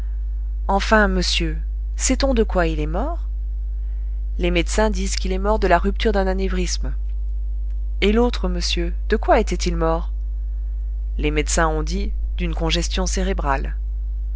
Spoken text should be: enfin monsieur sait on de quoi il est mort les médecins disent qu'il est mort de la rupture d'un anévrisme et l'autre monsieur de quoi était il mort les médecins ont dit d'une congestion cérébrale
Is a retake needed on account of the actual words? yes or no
no